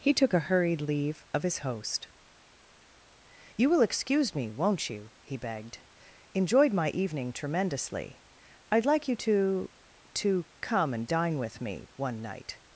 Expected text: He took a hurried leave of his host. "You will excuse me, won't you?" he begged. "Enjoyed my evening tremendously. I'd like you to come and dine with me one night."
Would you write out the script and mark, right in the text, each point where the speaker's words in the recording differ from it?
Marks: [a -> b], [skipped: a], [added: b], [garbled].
He took a hurried leave of his host. "You will excuse me, won't you?" he begged. "Enjoyed my evening tremendously. I'd like you to [added: to] come and dine with me one night."